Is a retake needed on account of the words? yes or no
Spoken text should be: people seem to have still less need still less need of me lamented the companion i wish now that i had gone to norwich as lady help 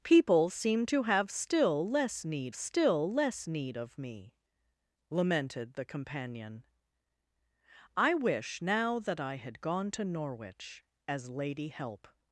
no